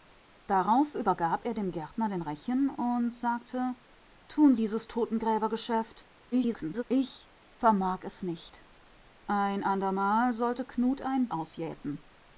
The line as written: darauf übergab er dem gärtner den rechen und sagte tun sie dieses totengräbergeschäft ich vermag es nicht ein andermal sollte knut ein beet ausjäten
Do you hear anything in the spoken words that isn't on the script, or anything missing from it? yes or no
yes